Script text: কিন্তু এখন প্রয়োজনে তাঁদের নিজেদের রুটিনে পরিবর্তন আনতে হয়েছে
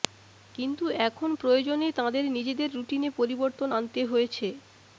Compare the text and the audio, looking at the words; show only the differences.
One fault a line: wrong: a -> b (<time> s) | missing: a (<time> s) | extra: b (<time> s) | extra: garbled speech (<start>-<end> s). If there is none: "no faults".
no faults